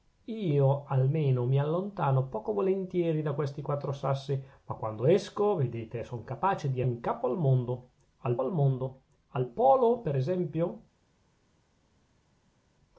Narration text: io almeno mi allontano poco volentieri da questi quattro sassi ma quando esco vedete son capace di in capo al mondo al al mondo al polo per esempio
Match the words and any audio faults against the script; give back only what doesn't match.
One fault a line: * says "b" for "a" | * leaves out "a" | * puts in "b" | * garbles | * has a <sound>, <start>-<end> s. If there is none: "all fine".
all fine